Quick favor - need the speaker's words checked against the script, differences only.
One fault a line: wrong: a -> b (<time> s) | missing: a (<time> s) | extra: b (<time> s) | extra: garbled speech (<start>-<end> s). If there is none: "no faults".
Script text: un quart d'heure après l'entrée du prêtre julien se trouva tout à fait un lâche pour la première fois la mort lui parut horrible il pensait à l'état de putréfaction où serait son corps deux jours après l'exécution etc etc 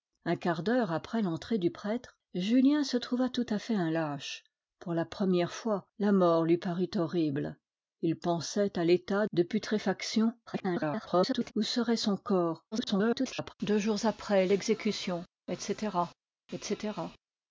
extra: garbled speech (10.5-11.5 s)
extra: garbled speech (12.7-13.5 s)